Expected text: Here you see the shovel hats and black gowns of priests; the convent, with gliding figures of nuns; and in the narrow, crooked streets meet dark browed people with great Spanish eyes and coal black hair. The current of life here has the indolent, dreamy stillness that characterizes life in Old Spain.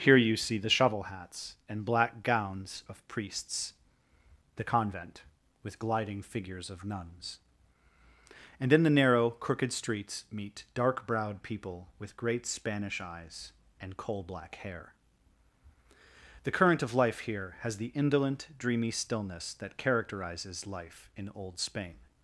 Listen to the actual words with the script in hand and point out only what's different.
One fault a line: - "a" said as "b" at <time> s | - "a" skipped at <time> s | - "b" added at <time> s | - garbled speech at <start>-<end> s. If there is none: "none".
none